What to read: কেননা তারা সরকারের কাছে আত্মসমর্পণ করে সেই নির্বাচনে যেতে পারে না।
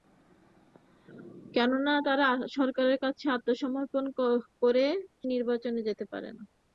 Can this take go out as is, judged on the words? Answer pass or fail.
fail